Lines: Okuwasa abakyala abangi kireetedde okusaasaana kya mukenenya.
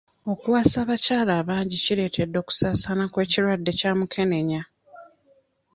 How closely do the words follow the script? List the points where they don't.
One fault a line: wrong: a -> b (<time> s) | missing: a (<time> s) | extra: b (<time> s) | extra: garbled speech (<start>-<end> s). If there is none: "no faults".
extra: kw'ekirwadde (3.1 s)